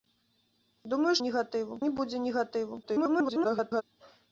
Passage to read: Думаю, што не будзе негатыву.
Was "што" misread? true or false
true